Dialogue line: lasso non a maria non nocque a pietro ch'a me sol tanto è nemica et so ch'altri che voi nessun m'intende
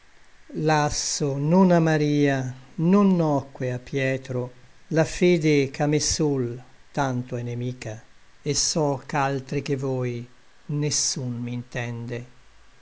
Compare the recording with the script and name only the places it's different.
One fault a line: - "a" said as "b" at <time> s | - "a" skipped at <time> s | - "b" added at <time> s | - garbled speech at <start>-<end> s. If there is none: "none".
- "la fede" added at 4.9 s